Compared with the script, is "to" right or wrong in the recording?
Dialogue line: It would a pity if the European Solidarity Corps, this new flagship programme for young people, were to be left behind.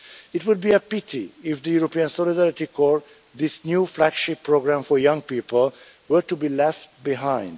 right